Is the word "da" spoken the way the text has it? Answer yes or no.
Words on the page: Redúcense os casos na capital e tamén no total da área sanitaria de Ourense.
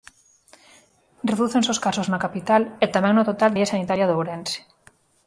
no